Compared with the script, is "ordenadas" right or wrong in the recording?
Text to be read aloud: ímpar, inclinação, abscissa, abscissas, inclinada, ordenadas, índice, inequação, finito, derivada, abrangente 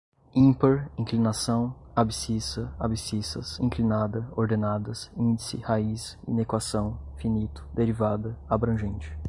right